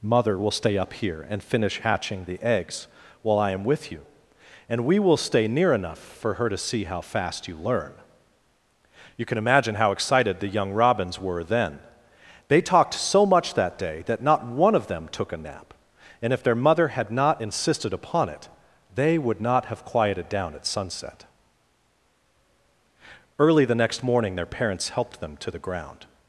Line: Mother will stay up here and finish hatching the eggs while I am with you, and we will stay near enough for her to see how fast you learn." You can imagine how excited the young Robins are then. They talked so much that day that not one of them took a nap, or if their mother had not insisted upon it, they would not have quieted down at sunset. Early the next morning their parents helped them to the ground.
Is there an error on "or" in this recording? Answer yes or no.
yes